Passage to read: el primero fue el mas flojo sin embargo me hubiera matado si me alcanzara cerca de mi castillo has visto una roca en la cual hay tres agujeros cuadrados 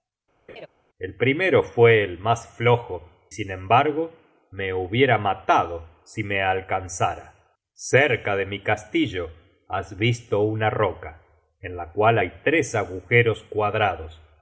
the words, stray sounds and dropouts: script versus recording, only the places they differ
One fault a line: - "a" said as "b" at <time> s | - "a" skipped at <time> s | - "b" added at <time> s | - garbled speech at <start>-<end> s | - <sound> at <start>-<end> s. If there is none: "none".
- laugh at 0.5-0.7 s